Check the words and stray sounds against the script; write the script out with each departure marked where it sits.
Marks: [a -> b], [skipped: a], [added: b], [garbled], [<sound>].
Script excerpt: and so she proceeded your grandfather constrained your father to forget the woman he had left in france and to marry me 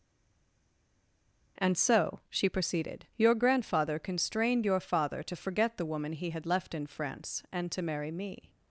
and so she proceeded your grandfather constrained your father to forget the woman he had left in france and to marry me